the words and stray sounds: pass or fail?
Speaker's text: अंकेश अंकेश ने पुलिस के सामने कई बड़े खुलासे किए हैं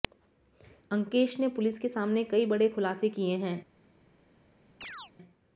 fail